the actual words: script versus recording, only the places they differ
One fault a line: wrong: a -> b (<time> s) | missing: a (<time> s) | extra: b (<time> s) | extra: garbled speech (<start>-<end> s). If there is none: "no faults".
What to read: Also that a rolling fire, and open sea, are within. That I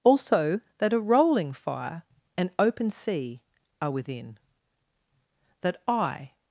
no faults